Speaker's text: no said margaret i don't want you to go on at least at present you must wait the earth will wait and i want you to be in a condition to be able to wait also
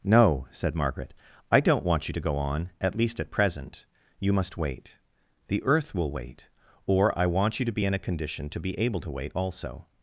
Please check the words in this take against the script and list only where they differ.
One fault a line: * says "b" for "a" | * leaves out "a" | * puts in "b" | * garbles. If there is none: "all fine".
* says "or" for "and"